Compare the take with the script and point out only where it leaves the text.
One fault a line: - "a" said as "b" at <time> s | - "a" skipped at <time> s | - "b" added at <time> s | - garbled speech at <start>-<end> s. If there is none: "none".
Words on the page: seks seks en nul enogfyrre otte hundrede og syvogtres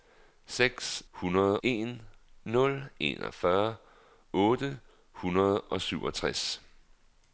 - "seks" said as "hundrede" at 1.1 s